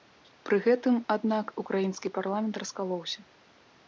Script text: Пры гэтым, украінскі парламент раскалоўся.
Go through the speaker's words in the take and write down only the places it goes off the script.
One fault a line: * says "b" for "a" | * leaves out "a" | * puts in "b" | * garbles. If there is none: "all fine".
* puts in "аднак"